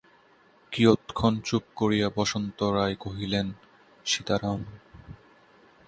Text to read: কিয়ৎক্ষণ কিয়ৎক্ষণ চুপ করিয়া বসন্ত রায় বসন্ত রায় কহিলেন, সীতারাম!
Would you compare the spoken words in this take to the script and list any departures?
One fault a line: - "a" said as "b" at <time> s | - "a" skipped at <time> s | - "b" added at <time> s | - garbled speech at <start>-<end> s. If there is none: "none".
- "কিয়ৎক্ষণ" skipped at 1.3 s
- "বসন্ত রায়" skipped at 3.0 s